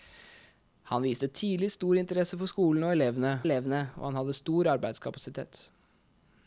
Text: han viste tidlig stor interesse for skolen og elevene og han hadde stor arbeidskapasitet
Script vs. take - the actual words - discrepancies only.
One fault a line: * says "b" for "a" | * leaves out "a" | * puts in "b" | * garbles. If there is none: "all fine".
* puts in "elevene"